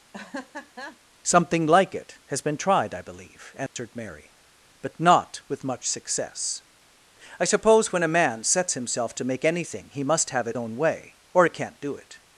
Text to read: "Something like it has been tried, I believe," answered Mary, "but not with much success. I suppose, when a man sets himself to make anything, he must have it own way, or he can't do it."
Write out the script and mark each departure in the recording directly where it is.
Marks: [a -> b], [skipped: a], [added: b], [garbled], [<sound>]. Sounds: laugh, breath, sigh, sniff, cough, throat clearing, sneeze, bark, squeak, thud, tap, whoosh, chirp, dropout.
[laugh] "Something like it has been tried, I believe," answered [dropout] Mary, "but not with much success. I suppose, when a man sets himself to make anything, he must have it own way, or he can't do it."